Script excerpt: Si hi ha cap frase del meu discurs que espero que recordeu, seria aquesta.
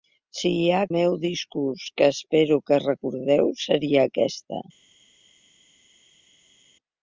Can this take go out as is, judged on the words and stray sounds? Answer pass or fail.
fail